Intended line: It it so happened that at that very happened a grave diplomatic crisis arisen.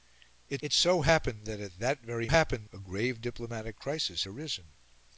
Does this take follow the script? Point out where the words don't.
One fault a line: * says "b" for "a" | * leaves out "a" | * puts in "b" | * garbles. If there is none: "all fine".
all fine